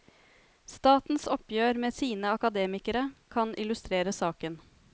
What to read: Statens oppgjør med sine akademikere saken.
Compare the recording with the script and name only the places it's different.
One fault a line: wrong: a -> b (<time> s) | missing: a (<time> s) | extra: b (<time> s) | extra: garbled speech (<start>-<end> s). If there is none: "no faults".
extra: kan illustrere (3.4 s)